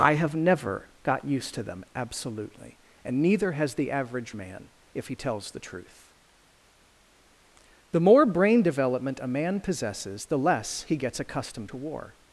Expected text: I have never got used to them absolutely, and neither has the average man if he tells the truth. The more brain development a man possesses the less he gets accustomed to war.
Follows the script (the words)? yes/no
yes